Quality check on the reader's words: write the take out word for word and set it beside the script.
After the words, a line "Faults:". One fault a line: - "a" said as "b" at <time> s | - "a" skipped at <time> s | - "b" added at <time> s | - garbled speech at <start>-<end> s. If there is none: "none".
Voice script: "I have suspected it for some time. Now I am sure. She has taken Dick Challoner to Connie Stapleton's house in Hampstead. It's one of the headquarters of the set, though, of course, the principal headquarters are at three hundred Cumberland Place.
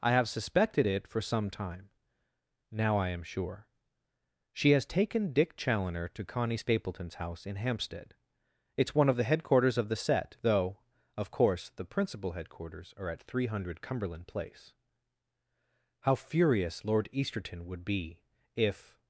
"I have suspected it for some time. Now I am sure. She has taken Dick Challoner to Connie Stapleton's house in Hampstead. It's one of the headquarters of the set, though, of course, the principal headquarters are at three hundred Cumberland Place. How furious Lord Easterton would be if
Faults:
- "How furious Lord Easterton would be if" added at 16.0 s